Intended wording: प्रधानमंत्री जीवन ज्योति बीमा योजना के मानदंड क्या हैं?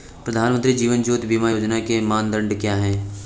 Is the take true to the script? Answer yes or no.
yes